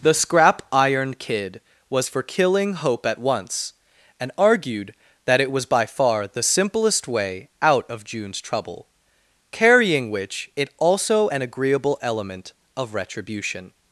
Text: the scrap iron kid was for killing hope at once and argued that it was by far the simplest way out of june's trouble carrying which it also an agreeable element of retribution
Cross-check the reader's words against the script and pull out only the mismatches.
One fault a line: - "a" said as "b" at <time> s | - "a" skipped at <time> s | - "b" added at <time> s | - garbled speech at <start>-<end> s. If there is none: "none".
none